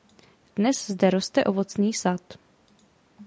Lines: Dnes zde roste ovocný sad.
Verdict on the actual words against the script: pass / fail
pass